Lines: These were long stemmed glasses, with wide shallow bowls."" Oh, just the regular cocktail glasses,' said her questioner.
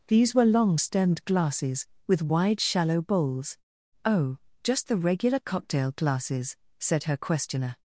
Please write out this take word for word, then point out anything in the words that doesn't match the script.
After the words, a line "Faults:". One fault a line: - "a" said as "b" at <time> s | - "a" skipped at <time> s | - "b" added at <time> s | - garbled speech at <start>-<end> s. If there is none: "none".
These were long stemmed glasses, with wide shallow bowls."" Oh, just the regular cocktail glasses,' said her questioner.
Faults:
none